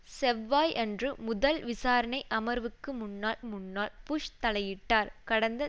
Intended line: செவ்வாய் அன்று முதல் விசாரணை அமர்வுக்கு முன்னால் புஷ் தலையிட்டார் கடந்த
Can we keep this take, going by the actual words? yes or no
no